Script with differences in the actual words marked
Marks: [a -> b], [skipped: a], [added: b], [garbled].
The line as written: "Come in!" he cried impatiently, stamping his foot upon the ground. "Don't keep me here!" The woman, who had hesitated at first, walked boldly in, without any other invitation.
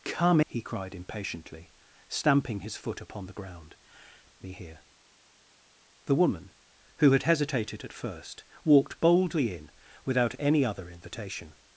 "Come [skipped: in!"] he cried impatiently, stamping his foot upon the ground. [skipped: "Don't keep] me here!" The woman, who had hesitated at first, walked boldly in, without any other invitation.